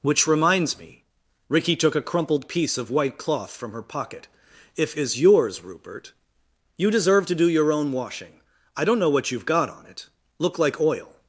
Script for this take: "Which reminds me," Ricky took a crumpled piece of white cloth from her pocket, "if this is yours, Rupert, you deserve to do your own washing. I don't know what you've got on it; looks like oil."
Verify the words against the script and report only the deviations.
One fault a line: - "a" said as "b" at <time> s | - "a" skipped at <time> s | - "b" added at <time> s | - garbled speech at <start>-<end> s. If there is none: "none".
- "this" skipped at 5.0 s
- "looks" said as "look" at 10.4 s